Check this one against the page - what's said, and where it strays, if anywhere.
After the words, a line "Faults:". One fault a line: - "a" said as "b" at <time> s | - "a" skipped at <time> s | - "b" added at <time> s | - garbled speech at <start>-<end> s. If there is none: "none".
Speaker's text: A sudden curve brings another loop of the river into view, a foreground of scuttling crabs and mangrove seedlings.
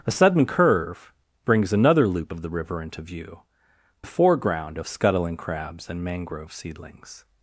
A sudden curve brings another loop of the river into view, a foreground of scuttling crabs and mangrove seedlings.
Faults:
none